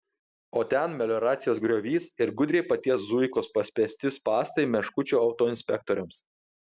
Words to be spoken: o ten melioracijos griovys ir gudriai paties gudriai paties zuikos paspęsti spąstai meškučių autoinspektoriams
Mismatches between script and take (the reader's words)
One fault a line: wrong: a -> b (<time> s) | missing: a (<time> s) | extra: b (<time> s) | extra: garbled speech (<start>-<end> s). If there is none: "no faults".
missing: gudriai paties (3.0 s)